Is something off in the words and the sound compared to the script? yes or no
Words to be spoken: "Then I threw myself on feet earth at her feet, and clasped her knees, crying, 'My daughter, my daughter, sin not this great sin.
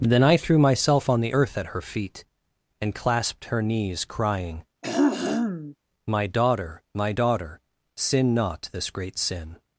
yes